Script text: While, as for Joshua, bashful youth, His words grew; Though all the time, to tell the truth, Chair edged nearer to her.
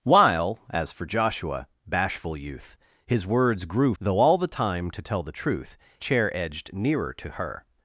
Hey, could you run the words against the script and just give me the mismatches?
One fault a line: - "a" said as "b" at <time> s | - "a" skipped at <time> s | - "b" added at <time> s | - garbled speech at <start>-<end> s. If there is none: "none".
none